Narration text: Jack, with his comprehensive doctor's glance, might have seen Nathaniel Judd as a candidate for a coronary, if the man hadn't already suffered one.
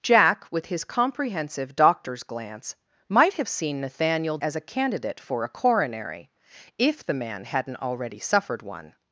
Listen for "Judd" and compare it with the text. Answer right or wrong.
wrong